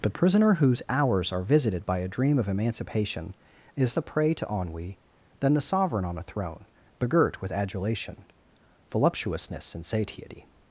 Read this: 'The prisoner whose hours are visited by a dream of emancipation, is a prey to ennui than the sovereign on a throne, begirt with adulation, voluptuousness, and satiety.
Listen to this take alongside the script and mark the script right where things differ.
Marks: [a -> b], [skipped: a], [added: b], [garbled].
'The prisoner whose hours are visited by a dream of emancipation, is a prey to ennui than the sovereign on a throne, begirt with adulation, voluptuousness, and satiety.